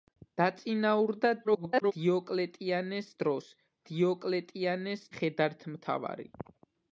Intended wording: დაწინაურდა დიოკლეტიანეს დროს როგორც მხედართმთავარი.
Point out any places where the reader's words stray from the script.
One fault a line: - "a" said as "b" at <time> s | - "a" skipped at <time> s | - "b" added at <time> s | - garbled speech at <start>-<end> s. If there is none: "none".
- garbled speech at 1.4-1.9 s
- "როგორც" said as "დიოკლეტიანეს" at 3.9 s